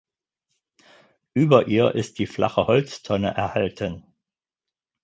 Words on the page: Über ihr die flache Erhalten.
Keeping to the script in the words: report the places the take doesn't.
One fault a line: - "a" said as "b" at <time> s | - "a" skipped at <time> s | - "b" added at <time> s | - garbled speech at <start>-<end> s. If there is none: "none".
- "ist" added at 1.9 s
- "Holztonne" added at 2.7 s